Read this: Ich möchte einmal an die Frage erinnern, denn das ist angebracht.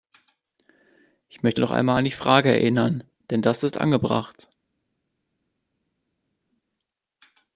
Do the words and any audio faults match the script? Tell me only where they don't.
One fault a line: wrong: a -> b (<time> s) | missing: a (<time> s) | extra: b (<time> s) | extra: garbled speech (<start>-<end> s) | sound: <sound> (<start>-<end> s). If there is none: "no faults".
extra: noch (1.6 s)